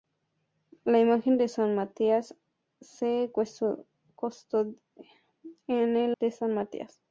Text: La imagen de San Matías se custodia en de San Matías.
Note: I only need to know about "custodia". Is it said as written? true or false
true